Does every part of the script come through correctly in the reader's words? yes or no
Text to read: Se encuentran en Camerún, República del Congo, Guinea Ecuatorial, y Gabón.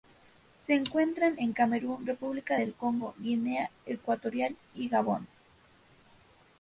yes